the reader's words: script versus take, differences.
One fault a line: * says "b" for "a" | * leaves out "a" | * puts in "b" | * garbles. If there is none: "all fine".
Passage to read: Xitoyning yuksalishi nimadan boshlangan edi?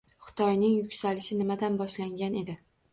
all fine